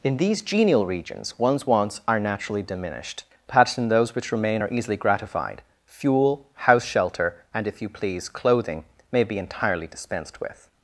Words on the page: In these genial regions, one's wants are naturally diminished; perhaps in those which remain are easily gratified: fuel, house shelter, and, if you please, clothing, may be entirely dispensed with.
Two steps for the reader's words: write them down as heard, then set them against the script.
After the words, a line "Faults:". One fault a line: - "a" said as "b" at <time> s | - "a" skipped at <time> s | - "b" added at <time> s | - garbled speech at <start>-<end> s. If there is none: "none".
In these genial regions, one's wants are naturally diminished; perhaps in those which remain are easily gratified: fuel, house shelter, and, if you please, clothing, may be entirely dispensed with.
Faults:
none